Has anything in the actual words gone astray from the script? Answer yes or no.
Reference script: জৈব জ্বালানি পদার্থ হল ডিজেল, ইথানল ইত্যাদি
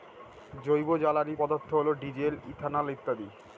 no